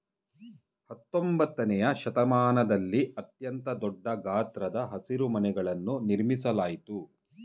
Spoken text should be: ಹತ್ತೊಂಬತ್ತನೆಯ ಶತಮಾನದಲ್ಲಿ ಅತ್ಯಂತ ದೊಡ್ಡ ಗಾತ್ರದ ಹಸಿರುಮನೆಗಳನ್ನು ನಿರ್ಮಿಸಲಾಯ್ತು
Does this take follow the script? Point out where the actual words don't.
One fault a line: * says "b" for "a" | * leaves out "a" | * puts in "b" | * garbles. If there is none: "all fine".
all fine